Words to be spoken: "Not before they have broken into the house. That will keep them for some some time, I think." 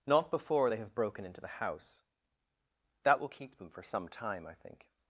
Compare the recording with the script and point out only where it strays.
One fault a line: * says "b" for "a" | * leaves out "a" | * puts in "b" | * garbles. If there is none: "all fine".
* leaves out "some"